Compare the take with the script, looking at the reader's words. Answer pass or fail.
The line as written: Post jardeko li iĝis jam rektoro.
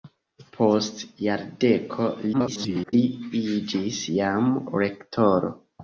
fail